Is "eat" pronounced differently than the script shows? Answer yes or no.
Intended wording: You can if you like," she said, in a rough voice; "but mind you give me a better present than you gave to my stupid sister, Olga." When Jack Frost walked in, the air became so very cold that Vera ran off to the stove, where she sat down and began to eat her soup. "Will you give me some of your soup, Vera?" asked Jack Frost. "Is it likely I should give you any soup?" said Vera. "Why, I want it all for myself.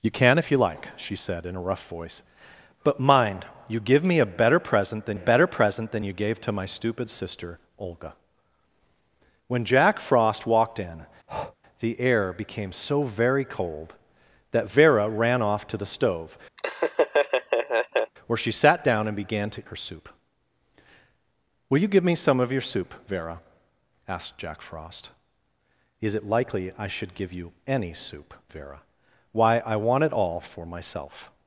yes